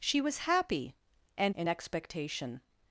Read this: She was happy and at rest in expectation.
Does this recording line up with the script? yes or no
no